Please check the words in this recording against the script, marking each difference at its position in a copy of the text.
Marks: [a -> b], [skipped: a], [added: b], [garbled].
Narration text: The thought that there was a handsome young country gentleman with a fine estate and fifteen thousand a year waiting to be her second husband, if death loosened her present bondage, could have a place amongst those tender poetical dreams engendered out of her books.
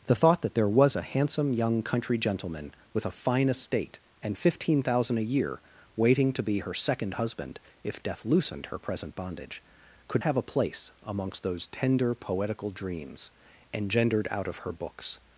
The thought that there was a handsome young country gentleman with a fine estate and fifteen thousand a year waiting to be her second husband, if death loosened her present bondage, could have a place amongst those tender poetical dreams engendered out of her books.